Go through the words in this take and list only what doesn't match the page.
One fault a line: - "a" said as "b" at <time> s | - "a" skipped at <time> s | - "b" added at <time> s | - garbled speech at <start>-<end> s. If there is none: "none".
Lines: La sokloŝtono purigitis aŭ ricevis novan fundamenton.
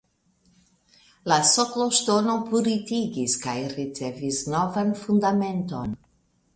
- "aŭ" said as "kaj" at 3.5 s